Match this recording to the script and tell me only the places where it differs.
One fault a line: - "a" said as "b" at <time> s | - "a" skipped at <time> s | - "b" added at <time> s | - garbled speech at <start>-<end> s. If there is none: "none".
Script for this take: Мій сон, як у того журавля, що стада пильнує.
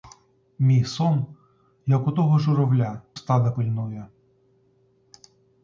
- "що" skipped at 3.0 s